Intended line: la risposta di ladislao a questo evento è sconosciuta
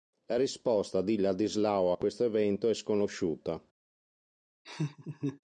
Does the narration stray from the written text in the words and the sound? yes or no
yes